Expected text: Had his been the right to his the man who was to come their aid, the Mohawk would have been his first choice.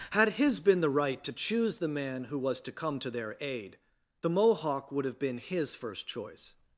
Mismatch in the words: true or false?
true